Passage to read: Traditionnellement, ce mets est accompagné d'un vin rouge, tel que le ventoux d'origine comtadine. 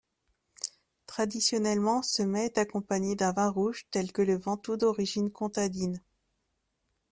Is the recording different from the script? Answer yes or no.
no